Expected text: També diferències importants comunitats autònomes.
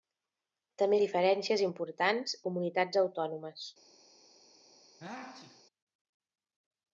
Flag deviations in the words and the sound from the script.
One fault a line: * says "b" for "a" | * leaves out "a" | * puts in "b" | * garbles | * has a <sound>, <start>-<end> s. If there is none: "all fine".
* has a sneeze, 5.0-5.6 s